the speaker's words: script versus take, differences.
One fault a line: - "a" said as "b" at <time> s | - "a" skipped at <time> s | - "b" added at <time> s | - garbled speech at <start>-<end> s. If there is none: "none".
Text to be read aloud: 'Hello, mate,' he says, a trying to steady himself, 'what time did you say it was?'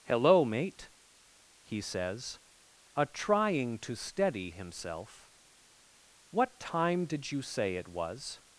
none